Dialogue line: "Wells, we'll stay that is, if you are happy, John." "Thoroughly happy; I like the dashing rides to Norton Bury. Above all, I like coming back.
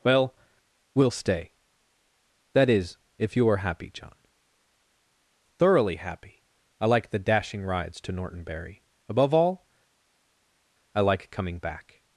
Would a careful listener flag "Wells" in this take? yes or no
yes